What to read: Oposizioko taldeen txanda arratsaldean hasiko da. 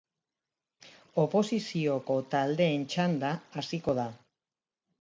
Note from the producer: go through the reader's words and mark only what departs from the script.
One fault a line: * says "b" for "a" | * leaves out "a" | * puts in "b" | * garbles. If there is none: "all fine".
* leaves out "arratsaldean"